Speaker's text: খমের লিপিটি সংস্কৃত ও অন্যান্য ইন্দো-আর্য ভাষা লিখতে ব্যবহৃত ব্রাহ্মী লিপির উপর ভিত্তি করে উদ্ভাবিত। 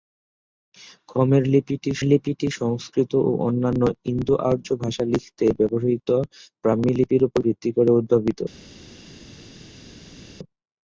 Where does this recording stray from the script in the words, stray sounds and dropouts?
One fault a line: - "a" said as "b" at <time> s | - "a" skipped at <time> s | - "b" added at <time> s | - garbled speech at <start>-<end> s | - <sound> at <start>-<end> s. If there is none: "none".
- "লিপিটি" added at 2.0 s